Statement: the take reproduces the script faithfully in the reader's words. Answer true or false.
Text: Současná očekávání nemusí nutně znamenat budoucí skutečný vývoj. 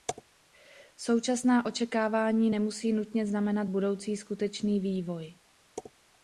true